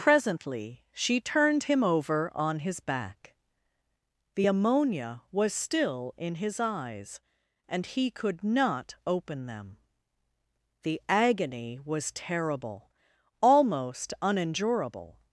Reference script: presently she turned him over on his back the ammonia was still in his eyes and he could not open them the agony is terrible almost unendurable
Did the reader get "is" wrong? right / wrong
wrong